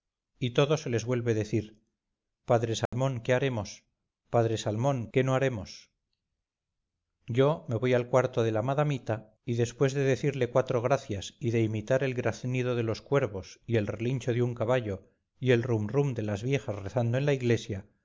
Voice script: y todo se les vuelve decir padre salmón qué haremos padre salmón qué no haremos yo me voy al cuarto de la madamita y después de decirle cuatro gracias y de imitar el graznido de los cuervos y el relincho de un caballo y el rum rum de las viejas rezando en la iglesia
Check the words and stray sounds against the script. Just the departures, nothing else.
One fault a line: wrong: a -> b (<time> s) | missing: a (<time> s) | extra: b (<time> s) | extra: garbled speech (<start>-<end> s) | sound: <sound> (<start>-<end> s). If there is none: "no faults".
sound: dropout (2.9-2.9 s)